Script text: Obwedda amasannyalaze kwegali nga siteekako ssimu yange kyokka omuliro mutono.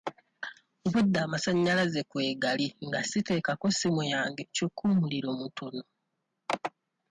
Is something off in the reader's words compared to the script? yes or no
no